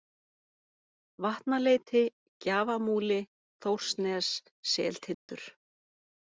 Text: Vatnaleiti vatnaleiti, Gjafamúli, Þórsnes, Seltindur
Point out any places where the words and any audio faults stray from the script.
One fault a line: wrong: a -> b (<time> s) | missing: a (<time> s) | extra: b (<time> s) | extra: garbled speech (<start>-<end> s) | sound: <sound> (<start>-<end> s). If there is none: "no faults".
missing: vatnaleiti (2.0 s)
sound: dropout (5.1-5.3 s)